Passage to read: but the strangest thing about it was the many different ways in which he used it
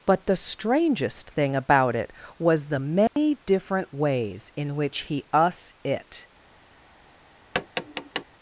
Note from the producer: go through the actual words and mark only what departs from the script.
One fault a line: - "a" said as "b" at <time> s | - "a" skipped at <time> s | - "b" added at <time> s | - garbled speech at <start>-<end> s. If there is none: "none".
- "used" said as "us" at 5.3 s